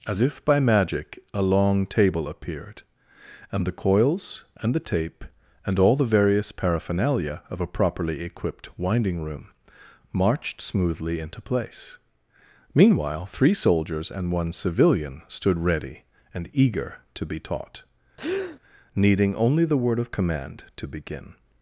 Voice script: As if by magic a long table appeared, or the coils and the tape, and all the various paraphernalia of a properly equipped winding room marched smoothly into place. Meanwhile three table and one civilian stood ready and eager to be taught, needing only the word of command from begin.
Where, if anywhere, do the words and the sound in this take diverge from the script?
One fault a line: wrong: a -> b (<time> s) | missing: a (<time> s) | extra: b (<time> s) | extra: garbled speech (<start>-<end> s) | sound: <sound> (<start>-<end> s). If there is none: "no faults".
wrong: or -> and (3.5 s)
wrong: table -> soldiers (13.5 s)
sound: breath (18.2-18.6 s)
wrong: from -> to (20.8 s)